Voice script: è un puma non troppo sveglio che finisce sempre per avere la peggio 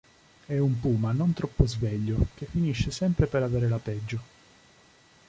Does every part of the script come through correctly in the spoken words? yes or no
yes